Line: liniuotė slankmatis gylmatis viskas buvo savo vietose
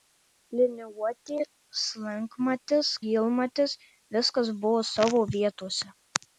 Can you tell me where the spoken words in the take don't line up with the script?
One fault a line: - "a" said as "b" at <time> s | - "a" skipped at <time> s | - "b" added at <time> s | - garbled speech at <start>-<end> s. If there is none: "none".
none